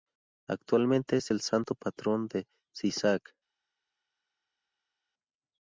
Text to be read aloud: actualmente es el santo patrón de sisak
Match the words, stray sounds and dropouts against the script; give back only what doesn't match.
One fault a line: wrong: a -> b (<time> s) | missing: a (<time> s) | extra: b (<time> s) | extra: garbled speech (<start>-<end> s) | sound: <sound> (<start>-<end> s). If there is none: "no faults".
no faults